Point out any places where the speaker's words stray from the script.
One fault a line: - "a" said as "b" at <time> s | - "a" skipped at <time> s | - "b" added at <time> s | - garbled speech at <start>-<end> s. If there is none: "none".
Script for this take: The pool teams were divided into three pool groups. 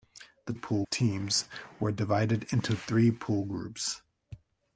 none